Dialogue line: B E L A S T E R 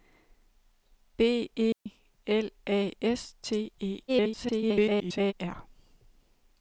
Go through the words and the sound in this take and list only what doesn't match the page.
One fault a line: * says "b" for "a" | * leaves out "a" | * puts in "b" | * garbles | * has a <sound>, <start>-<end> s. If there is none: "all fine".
* has a dropout, 1.7-1.9 s
* garbles